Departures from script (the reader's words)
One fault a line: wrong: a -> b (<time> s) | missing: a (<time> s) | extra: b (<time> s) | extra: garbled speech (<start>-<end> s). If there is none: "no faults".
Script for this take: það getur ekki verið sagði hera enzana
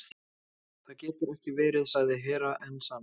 no faults